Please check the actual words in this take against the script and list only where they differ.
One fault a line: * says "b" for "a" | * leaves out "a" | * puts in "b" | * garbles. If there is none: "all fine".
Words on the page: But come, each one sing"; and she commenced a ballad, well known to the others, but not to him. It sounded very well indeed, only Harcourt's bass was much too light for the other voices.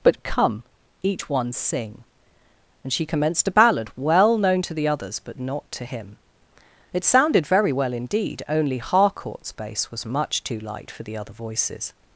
all fine